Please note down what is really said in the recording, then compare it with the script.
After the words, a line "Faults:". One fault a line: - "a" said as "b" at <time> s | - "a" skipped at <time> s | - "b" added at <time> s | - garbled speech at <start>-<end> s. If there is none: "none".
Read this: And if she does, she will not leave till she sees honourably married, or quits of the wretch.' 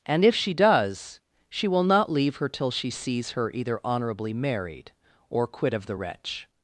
And if she does, she will not leave her till she sees her either honourably married, or quit of the wretch.'
Faults:
- "her" added at 2.4 s
- "her either" added at 3.3 s
- "quits" said as "quit" at 5.5 s